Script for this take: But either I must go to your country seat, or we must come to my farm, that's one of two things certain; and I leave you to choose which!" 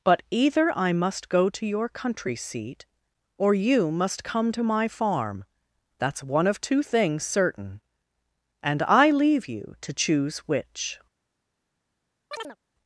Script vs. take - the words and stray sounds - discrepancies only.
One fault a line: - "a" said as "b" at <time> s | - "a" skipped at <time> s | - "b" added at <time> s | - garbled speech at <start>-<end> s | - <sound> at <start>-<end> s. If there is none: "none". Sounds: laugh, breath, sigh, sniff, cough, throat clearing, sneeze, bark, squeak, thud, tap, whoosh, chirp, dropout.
- "we" said as "you" at 3.5 s
- chirp at 12.3-12.6 s